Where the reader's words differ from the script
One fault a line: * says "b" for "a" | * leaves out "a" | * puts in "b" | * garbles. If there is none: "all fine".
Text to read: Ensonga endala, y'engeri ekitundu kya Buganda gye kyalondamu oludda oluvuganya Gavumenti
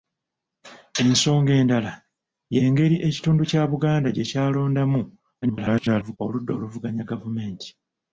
* garbles